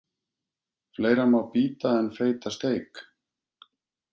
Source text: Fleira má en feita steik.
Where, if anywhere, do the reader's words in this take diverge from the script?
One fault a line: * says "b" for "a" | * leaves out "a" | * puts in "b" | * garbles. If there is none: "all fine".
* puts in "bíta"